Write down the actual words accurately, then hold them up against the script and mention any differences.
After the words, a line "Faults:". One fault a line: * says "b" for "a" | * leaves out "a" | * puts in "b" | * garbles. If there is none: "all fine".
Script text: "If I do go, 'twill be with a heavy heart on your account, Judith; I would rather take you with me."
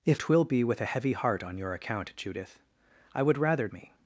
"If 'twill be with a heavy heart on your account, Judith; I would rather me."
Faults:
* leaves out "I do go"
* leaves out "take you with"